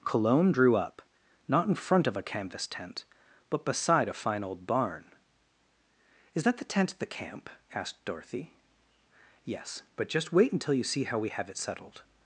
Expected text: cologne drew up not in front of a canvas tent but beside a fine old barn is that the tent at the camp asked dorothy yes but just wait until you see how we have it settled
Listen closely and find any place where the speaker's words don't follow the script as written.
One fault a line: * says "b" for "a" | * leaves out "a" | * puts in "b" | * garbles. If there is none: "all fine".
all fine